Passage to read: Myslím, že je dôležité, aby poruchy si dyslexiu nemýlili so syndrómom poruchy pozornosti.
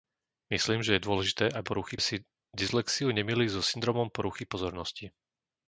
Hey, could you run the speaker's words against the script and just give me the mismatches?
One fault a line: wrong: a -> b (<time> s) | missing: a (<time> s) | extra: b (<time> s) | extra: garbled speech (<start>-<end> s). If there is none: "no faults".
no faults